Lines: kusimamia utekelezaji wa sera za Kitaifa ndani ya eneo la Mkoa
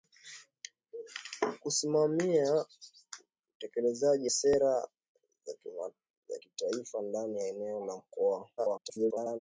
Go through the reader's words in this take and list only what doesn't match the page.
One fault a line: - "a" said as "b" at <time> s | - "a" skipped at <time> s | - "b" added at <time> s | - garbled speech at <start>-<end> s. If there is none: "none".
- "wa" skipped at 4.3 s
- garbled speech at 8.6-9.4 s